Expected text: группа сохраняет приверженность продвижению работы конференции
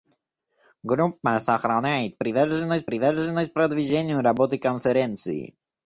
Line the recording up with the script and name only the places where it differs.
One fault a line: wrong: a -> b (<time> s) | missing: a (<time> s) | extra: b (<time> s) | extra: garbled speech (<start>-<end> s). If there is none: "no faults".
extra: приверженность (2.8 s)